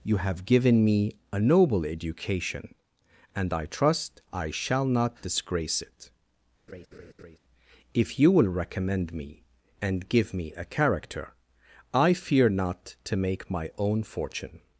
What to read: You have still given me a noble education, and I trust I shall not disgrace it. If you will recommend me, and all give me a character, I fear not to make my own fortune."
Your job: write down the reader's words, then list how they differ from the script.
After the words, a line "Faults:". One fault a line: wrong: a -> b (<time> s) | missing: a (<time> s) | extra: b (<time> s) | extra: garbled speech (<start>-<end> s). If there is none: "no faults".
You have given me a noble education, and I trust I shall not disgrace it. If you will recommend me, and give me a character, I fear not to make my own fortune."
Faults:
missing: still (0.5 s)
missing: all (10.1 s)